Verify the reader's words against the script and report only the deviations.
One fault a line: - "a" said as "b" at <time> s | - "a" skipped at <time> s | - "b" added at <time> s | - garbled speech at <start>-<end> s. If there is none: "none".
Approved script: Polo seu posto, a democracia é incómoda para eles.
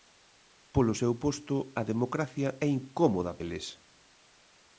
- "para" skipped at 3.3 s